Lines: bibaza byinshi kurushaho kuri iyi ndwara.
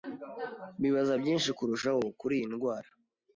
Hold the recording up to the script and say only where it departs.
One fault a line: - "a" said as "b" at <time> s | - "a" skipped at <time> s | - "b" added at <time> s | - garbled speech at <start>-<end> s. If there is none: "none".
none